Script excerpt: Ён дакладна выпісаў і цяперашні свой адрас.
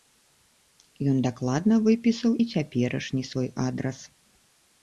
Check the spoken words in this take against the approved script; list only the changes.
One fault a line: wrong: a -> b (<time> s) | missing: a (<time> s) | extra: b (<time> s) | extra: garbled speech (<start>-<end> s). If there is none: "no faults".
no faults